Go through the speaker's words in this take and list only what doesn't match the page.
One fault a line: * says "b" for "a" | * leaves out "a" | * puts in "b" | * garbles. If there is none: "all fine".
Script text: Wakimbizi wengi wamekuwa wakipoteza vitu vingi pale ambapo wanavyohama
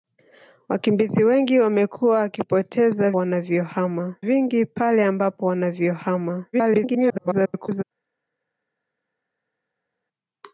* says "wanavyohama" for "vitu"
* garbles